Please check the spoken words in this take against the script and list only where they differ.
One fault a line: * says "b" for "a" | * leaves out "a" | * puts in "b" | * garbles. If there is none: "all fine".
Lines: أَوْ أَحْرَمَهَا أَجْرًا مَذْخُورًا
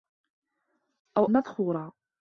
* leaves out "أَحْرَمَهَا أَجْرًا"